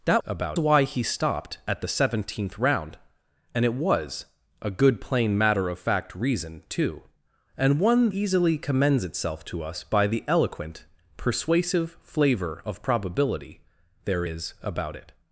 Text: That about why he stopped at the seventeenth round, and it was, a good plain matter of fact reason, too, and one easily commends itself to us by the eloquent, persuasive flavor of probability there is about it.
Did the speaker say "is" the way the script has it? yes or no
yes